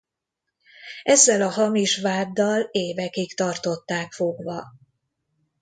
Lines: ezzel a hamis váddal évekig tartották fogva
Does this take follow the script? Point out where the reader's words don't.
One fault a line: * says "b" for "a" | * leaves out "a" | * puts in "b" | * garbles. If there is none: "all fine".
all fine